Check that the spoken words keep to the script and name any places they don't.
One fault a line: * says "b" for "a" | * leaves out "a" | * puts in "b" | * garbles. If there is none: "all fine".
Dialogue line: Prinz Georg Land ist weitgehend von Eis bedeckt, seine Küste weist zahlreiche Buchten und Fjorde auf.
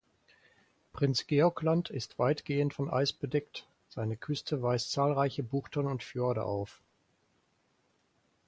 all fine